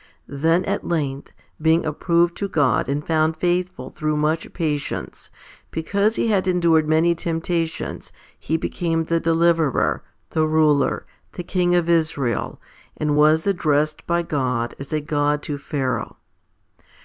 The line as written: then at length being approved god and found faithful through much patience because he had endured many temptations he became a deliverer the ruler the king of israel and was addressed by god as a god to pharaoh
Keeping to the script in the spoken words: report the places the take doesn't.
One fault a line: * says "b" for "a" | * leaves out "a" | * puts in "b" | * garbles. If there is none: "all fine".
* puts in "to"
* says "the" for "a"